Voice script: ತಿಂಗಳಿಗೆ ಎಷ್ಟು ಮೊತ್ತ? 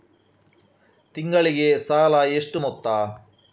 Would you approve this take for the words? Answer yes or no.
no